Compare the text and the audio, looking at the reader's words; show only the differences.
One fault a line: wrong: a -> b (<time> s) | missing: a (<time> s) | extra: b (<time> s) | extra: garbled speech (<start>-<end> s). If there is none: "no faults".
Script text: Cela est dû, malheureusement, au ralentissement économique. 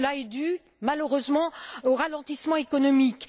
no faults